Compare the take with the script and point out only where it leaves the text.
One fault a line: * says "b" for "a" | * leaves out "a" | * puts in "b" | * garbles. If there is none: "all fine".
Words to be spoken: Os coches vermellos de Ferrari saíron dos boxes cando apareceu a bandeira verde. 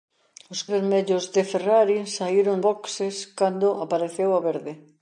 * leaves out "coches"
* leaves out "dos"
* leaves out "bandeira"